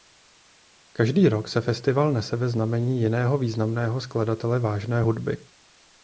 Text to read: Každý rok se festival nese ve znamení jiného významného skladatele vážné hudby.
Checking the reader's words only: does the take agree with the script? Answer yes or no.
yes